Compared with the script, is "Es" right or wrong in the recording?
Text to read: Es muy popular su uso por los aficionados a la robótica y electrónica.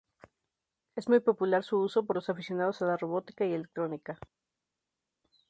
right